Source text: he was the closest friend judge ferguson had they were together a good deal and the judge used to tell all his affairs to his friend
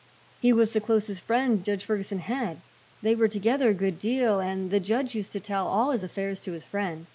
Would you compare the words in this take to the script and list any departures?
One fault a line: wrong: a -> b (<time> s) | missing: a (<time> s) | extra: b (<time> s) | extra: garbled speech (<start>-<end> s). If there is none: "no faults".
no faults